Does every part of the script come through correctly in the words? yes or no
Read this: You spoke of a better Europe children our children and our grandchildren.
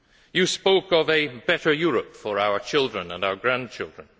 no